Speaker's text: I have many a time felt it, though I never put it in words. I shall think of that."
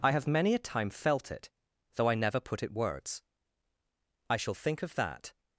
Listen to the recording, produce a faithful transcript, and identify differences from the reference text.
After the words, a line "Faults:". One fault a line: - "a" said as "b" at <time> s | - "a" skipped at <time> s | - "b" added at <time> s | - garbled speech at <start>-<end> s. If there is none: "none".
I have many a time felt it, though I never put it words. I shall think of that."
Faults:
- "in" skipped at 2.7 s